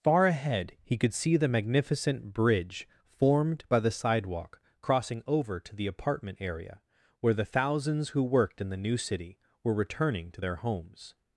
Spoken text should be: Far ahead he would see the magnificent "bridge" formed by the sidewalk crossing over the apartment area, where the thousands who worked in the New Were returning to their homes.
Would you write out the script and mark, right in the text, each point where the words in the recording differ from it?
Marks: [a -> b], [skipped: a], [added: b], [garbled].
Far ahead he [would -> could] see the magnificent "bridge" formed by the sidewalk crossing over [added: to] the apartment area, where the thousands who worked in the New [added: City] Were returning to their homes.